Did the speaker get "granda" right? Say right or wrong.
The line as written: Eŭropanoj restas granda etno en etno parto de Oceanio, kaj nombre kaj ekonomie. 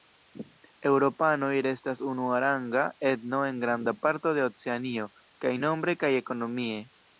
wrong